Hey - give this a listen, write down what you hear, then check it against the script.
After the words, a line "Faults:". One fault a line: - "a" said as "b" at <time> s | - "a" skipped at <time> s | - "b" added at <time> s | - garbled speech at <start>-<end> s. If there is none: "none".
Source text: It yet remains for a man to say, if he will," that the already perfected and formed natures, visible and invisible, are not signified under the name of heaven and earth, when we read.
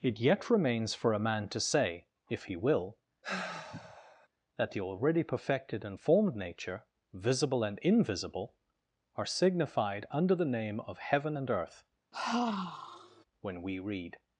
It yet remains for a man to say, if he will," that the already perfected and formed nature, visible and invisible, are signified under the name of heaven and earth, when we read.
Faults:
- "natures" said as "nature" at 6.3 s
- "not" skipped at 9.2 s